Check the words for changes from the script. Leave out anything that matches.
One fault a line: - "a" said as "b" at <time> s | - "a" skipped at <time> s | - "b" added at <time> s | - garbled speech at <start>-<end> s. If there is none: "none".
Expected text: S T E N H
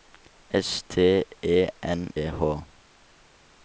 none